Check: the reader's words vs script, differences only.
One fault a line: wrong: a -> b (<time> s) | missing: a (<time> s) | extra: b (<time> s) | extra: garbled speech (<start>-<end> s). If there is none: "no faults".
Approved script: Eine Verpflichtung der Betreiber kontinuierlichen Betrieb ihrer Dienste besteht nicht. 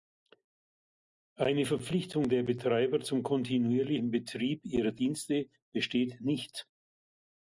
extra: zum (3.0 s)